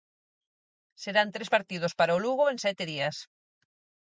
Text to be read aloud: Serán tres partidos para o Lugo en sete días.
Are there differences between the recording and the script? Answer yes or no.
no